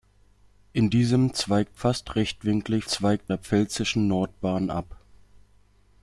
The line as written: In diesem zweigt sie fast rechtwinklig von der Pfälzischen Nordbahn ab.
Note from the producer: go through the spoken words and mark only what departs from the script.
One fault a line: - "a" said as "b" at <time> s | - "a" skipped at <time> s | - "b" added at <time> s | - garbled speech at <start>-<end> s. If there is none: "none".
- "sie" skipped at 1.8 s
- "von" said as "zweigt" at 2.9 s